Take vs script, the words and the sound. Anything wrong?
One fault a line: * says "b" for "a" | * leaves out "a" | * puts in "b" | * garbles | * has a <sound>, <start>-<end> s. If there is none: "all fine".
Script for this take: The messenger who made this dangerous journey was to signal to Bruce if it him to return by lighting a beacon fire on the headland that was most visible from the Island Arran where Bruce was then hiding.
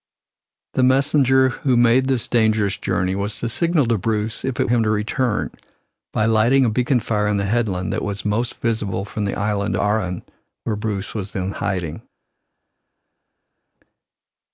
all fine